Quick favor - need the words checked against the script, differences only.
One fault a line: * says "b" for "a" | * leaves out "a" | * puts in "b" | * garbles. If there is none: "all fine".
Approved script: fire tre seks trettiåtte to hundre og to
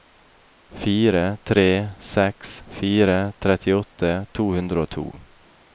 * puts in "fire"